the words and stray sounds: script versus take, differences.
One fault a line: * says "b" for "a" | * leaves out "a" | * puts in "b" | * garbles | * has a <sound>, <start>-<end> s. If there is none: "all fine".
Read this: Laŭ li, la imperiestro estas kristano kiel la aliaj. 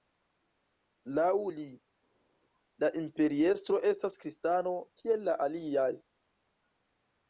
all fine